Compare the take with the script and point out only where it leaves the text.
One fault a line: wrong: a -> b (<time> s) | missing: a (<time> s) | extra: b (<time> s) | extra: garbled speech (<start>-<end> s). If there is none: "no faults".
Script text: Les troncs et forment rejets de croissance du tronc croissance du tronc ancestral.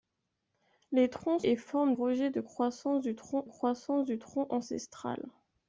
no faults